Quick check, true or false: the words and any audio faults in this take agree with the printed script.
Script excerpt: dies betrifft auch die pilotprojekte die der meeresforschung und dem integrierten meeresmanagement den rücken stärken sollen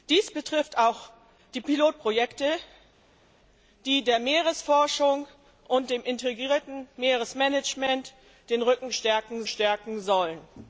false